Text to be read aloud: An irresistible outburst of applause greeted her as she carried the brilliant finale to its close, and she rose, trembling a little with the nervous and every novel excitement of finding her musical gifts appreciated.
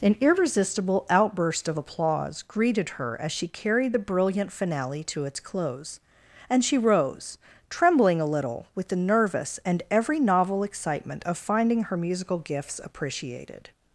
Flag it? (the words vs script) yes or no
no